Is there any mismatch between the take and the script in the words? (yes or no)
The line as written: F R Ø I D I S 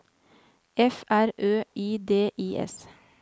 no